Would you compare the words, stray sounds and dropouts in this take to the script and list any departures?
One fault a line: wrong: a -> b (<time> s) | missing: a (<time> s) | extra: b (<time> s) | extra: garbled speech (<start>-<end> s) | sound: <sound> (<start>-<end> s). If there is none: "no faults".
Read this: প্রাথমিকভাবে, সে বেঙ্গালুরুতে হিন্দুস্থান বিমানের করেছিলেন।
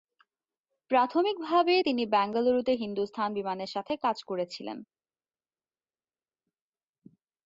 wrong: সে -> তিনি (1.8 s)
extra: সাথে কাজ (3.7 s)